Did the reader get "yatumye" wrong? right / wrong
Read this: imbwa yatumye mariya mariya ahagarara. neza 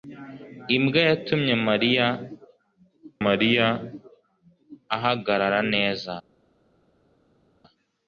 right